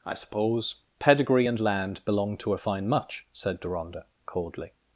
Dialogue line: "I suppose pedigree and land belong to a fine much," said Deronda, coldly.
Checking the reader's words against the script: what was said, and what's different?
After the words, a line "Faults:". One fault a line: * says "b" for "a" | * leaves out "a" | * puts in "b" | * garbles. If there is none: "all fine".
"I suppose pedigree and land belong to a fine much," said Deronda, coldly.
Faults:
all fine